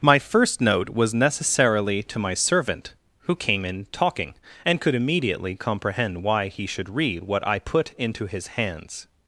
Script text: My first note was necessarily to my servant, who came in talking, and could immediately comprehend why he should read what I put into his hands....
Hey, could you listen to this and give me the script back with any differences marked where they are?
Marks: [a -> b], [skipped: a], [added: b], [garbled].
My first note was necessarily to my servant, who came in talking, and could immediately comprehend why he should read what I put into his hands....